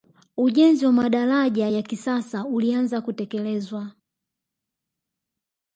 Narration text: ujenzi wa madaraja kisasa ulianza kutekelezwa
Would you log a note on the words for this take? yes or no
yes